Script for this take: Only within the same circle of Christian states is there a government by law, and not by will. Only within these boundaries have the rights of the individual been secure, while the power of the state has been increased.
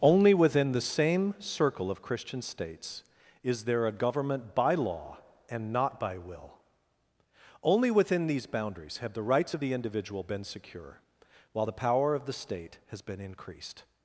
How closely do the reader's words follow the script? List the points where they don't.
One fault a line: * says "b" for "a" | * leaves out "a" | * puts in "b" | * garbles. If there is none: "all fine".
all fine